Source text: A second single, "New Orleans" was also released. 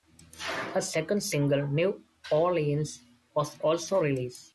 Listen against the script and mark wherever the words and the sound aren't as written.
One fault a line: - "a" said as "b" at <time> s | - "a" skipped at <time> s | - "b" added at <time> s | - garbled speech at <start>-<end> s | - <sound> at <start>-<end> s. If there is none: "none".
none